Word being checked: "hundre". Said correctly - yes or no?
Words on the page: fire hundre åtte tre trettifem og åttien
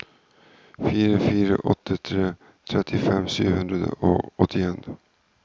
no